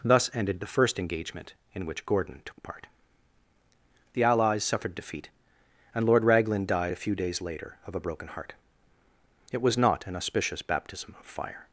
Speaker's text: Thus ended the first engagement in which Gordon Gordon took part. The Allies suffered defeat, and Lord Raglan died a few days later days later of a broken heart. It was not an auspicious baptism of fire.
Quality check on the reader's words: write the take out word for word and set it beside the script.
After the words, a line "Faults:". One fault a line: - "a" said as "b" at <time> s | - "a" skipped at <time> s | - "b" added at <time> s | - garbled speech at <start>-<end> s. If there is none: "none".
Thus ended the first engagement in which Gordon took part. The Allies suffered defeat, and Lord Raglan died a few days later of a broken heart. It was not an auspicious baptism of fire.
Faults:
- "Gordon" skipped at 2.4 s
- "days later" skipped at 7.8 s